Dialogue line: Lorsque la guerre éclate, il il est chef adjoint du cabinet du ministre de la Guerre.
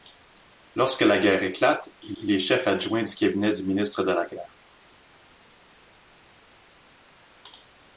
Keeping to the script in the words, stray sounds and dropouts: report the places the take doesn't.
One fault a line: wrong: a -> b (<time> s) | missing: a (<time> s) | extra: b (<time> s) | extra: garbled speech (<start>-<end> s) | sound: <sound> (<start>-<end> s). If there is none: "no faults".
no faults